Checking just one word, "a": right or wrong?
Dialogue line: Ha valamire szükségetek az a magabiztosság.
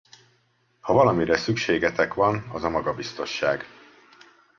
right